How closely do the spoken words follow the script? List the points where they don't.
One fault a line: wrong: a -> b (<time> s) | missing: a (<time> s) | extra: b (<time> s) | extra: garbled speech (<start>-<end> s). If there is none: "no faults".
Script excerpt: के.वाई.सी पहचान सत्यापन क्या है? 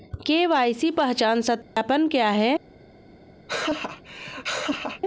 no faults